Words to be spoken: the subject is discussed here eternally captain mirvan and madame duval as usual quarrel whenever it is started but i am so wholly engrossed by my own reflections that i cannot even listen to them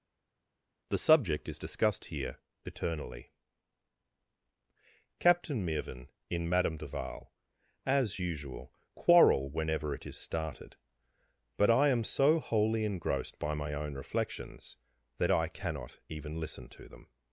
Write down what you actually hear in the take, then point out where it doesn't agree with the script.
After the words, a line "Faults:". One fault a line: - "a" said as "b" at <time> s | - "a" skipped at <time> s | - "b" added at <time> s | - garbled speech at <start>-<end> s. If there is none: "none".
the subject is discussed here eternally captain mirvan in madame duval as usual quarrel whenever it is started but i am so wholly engrossed by my own reflections that i cannot even listen to them
Faults:
- "and" said as "in" at 6.3 s